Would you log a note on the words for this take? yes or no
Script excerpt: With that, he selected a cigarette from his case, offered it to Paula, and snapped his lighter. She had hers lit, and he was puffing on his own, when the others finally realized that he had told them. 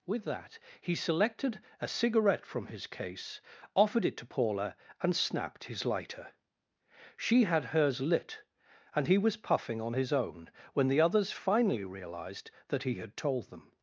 no